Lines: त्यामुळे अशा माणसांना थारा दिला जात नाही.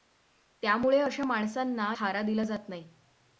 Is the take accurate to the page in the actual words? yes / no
yes